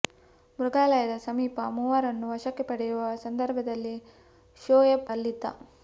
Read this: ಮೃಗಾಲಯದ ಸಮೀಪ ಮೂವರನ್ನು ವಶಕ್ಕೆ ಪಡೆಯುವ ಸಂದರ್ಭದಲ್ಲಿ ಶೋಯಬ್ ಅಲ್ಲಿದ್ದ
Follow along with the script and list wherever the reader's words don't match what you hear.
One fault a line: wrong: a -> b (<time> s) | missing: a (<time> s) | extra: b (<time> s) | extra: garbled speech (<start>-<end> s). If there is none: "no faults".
no faults